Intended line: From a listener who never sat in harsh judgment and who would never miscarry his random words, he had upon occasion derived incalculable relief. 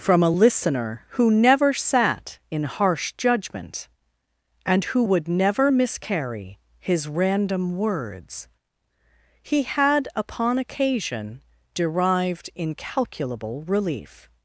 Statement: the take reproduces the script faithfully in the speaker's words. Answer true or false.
true